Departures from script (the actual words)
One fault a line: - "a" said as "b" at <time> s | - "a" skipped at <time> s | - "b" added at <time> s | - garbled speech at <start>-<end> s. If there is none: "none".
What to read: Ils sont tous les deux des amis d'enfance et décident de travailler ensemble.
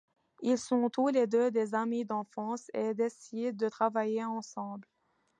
none